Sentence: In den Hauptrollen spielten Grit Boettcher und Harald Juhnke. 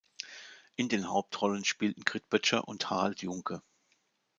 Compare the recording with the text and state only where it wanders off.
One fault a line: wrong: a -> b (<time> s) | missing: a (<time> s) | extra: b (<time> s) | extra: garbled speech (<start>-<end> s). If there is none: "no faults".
no faults